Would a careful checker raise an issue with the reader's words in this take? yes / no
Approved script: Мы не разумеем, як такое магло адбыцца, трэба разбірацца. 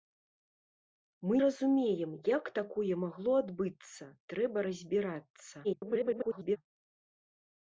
yes